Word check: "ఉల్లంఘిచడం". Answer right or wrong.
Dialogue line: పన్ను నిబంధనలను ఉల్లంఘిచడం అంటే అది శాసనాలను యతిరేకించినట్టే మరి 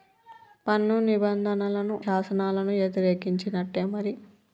wrong